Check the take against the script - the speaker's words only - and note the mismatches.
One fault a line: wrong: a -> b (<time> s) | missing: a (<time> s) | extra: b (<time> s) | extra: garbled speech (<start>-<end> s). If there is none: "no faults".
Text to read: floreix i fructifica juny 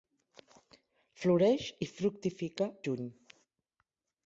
no faults